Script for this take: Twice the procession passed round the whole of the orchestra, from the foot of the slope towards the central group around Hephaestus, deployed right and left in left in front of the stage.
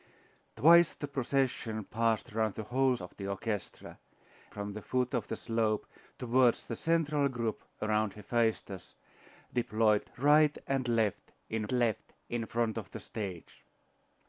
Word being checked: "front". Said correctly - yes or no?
yes